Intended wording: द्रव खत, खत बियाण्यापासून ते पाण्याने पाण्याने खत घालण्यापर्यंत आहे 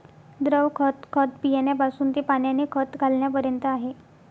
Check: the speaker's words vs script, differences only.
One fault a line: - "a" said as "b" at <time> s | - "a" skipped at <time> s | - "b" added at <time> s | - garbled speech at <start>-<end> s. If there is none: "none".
- "पाण्याने" skipped at 2.6 s